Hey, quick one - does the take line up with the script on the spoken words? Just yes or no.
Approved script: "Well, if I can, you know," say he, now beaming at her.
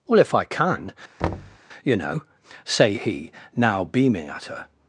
yes